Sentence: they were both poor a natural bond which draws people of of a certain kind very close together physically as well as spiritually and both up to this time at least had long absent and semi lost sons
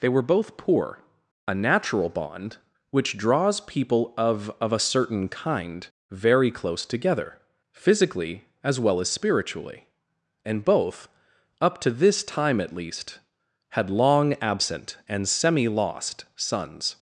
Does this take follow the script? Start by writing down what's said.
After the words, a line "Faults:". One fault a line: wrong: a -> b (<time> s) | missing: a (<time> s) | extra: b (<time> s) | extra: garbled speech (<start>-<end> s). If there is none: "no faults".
they were both poor a natural bond which draws people of of a certain kind very close together physically as well as spiritually and both up to this time at least had long absent and semi lost sons
Faults:
no faults